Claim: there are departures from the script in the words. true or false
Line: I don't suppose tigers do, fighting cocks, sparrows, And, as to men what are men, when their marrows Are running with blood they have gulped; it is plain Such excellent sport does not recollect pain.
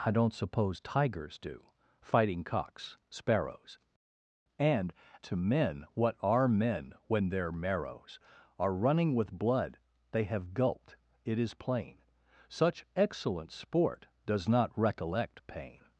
true